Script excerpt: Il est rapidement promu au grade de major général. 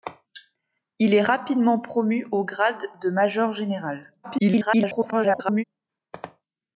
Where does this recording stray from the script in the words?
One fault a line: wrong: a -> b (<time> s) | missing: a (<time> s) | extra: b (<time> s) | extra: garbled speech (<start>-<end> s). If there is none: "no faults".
extra: garbled speech (4.2-5.6 s)